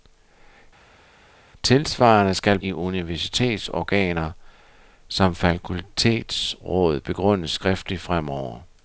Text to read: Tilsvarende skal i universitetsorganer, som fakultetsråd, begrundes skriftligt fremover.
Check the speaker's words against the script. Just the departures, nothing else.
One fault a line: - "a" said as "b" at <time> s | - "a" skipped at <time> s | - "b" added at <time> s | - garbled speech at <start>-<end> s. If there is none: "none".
none